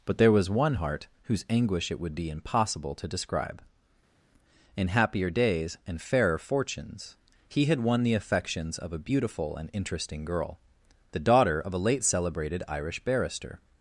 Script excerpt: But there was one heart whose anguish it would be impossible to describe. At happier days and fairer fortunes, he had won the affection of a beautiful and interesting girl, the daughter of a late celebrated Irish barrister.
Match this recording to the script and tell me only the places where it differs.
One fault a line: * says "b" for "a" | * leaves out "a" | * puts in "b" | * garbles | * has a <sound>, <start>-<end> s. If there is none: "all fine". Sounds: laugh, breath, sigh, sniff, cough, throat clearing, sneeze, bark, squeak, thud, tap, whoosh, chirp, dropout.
* says "In" for "At"
* says "affections" for "affection"